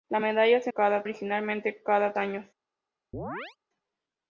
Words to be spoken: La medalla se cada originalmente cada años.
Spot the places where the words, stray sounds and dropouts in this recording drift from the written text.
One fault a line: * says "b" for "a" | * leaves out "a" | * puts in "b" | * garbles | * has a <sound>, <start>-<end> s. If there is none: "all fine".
* has a chirp, 3.1-3.6 s